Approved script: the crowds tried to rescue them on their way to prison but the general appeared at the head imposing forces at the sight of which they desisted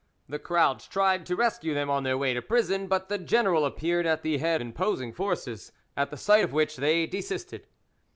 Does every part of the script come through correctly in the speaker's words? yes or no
yes